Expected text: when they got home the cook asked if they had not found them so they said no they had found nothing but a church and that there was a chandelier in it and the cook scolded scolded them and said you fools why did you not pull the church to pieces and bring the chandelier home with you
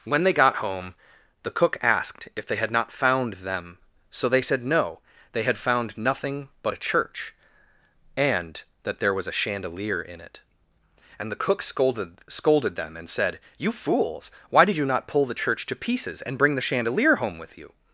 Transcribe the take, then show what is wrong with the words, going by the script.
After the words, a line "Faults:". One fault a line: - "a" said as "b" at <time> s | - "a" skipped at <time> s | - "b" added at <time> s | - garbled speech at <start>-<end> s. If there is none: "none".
when they got home the cook asked if they had not found them so they said no they had found nothing but a church and that there was a chandelier in it and the cook scolded scolded them and said you fools why did you not pull the church to pieces and bring the chandelier home with you
Faults:
none